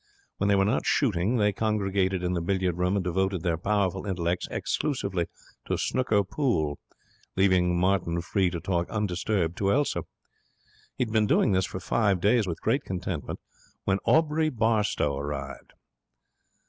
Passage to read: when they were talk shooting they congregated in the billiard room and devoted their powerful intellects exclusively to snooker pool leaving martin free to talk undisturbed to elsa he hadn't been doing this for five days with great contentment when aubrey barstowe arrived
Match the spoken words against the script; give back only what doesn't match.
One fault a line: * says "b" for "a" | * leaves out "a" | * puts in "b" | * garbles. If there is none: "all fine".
* says "not" for "talk"
* says "had" for "hadn't"